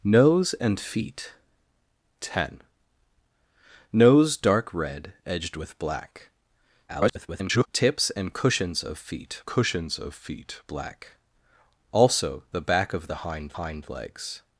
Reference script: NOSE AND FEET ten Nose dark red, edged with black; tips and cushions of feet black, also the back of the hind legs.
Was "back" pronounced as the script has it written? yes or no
yes